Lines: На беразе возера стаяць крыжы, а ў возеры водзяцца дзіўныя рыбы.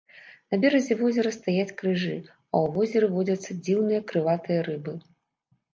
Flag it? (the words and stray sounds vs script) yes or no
yes